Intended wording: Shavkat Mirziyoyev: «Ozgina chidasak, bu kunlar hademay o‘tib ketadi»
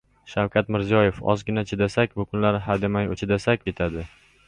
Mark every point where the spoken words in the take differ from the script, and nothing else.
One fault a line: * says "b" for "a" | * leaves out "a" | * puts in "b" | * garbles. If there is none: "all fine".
* says "chidasak" for "o‘tib"